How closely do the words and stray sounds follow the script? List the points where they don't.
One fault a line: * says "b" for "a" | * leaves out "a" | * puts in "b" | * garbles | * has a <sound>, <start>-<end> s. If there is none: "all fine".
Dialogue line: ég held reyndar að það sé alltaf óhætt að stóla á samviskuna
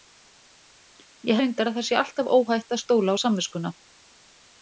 * leaves out "held"